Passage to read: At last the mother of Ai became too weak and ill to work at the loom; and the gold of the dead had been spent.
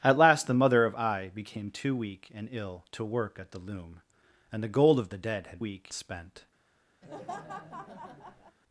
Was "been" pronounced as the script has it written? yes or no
no